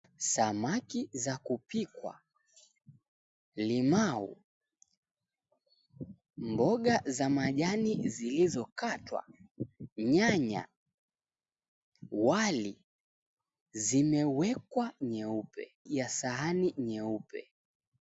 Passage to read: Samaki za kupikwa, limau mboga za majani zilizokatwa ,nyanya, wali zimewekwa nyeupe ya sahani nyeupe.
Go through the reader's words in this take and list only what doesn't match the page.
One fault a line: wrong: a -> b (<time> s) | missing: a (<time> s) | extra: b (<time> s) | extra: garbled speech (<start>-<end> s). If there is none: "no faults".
no faults